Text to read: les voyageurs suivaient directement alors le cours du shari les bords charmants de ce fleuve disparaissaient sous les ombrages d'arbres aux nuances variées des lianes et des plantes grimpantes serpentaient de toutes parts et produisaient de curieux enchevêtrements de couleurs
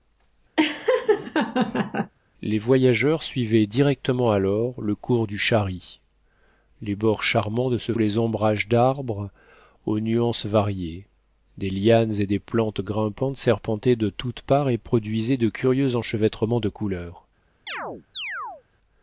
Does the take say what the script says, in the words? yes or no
no